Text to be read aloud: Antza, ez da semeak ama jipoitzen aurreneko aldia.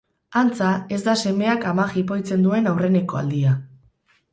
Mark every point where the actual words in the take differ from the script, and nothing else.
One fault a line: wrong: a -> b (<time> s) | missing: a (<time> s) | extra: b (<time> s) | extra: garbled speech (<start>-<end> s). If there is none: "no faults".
extra: duen (2.5 s)